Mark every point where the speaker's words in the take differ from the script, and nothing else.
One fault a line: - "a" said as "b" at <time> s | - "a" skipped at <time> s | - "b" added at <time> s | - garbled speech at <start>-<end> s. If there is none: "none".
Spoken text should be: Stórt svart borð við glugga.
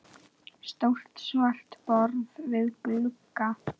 none